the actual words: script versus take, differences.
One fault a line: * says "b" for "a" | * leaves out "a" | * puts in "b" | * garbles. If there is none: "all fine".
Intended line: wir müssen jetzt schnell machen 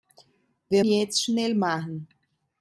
* leaves out "müssen"